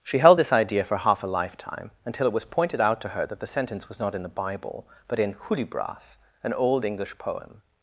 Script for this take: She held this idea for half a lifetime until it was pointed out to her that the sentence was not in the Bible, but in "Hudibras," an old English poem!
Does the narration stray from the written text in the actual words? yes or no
no